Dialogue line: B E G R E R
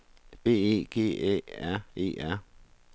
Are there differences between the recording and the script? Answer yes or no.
yes